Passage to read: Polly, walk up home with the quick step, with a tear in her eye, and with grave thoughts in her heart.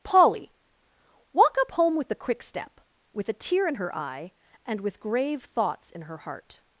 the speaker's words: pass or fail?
pass